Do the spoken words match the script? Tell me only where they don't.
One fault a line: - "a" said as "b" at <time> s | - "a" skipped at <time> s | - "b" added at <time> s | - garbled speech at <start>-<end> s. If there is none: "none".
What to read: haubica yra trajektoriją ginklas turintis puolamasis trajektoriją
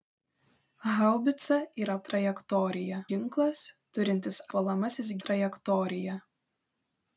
none